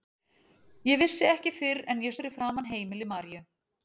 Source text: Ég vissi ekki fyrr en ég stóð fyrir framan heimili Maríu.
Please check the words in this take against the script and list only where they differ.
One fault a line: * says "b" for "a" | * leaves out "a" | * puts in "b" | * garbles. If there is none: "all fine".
* leaves out "stóð"